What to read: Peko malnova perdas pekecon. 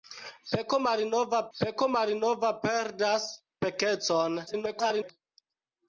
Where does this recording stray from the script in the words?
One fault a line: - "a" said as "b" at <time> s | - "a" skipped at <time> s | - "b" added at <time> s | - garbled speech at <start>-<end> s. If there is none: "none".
- "peko malnova" added at 1.6 s
- garbled speech at 4.5-5.1 s